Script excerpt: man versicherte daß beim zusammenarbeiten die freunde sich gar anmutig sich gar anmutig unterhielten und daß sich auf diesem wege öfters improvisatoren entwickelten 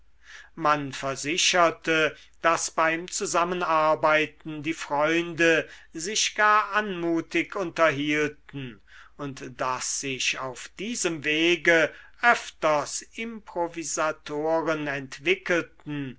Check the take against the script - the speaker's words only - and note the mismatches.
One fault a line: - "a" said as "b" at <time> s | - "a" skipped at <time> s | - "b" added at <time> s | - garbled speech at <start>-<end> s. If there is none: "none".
- "sich gar anmutig" skipped at 7.5 s